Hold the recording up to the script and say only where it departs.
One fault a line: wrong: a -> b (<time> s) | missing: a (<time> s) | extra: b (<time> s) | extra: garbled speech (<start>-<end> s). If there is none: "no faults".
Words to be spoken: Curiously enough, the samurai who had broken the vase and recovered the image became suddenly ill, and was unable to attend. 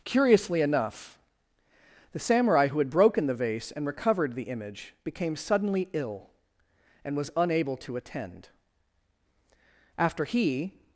extra: After he (10.0 s)